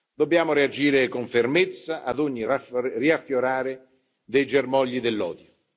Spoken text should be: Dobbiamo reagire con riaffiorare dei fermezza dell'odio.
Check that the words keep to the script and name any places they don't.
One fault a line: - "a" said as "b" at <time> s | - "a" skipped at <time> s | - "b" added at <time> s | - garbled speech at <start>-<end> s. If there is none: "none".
- "fermezza ad ogni" added at 1.3 s
- "fermezza" said as "germogli" at 4.5 s